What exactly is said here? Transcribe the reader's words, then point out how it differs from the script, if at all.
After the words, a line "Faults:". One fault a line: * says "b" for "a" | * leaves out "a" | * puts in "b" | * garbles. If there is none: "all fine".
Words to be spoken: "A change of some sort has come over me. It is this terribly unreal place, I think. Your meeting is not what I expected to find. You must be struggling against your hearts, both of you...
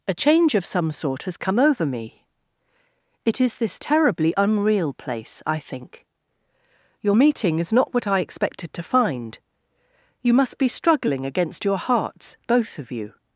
"A change of some sort has come over me. It is this terribly unreal place, I think. Your meeting is not what I expected to find. You must be struggling against your hearts, both of you...
Faults:
all fine